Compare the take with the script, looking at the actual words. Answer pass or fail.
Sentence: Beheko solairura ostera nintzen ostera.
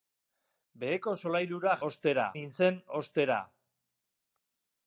pass